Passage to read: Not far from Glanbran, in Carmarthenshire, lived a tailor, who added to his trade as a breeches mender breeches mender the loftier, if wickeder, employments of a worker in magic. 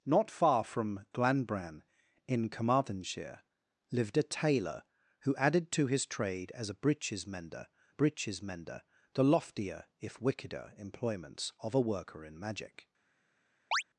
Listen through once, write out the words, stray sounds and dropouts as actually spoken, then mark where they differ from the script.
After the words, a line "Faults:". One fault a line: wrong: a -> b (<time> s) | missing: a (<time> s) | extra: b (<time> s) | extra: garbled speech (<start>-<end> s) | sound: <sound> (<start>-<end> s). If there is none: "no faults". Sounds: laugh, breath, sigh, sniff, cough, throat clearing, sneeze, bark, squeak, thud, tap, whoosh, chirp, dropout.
Not far from Glanbran, in Carmarthenshire, lived a tailor, who added to his trade as a breeches mender breeches mender the loftier, if wickeder, employments of a worker in magic.
Faults:
sound: chirp (13.7-13.8 s)